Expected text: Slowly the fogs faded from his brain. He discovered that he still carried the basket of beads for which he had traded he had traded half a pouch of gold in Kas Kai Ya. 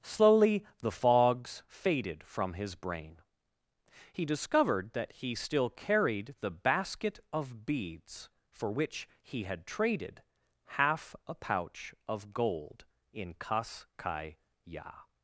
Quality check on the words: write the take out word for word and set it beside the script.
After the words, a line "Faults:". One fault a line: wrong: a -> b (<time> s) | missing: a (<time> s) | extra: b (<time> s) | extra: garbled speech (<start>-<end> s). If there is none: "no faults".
Slowly the fogs faded from his brain. He discovered that he still carried the basket of beads for which he had traded half a pouch of gold in Kas Kai Ya.
Faults:
missing: he had traded (10.2 s)